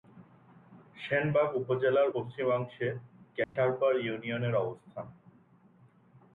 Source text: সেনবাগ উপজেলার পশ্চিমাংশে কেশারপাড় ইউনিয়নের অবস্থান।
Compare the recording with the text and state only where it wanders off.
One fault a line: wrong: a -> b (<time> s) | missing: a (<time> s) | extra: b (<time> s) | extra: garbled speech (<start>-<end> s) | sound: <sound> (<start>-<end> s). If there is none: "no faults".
sound: dropout (3.4-3.6 s)